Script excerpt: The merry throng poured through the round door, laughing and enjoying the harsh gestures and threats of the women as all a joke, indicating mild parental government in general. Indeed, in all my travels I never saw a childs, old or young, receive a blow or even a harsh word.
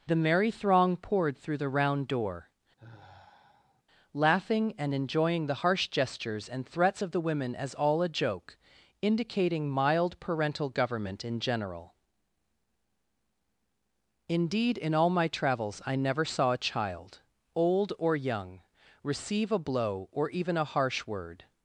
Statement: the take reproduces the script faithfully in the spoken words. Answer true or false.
false